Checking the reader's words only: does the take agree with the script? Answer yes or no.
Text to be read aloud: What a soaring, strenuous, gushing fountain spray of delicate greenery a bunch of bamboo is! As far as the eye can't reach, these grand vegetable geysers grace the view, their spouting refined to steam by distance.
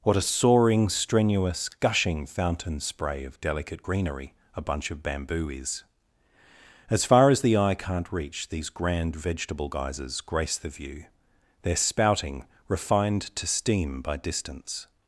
yes